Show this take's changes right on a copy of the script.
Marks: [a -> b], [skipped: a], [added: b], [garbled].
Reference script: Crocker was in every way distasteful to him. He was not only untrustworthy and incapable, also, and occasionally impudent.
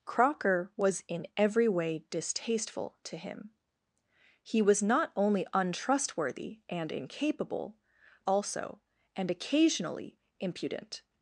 Crocker was in every way distasteful to him. He was not only untrustworthy and incapable, also, and occasionally impudent.